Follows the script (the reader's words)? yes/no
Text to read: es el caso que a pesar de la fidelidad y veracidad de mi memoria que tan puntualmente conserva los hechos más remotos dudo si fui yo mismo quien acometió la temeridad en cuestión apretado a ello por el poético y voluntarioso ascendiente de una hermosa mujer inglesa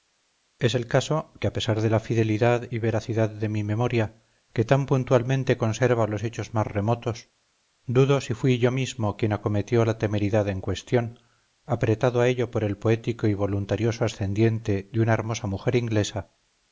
yes